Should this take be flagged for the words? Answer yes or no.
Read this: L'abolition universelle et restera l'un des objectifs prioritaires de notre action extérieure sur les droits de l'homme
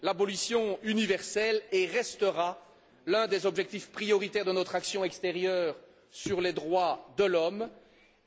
no